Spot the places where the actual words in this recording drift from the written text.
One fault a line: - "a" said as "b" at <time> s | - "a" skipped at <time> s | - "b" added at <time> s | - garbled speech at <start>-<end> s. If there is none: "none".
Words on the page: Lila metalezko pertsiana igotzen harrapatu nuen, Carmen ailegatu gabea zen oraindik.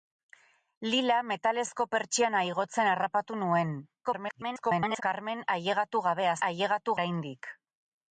- garbled speech at 4.0-5.0 s
- "zen" said as "ailegatu" at 6.5 s